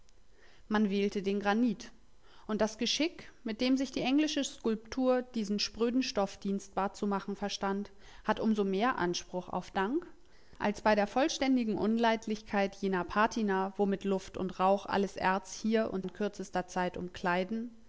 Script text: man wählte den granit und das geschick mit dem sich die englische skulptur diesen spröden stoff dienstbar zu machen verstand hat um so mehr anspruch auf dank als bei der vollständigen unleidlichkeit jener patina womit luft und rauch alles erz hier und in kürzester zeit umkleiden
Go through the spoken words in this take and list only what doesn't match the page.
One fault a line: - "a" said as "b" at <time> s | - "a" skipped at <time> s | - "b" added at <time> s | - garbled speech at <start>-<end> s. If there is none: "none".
none